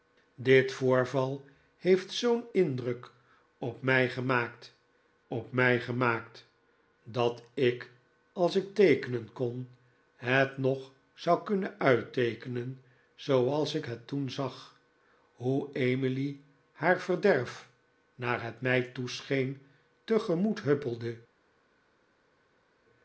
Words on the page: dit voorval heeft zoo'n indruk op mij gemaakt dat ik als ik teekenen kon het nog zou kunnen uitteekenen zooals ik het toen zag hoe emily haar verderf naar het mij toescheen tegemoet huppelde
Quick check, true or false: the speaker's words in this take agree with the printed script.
false